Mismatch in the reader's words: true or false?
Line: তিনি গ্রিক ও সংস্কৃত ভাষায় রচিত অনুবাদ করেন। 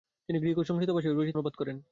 false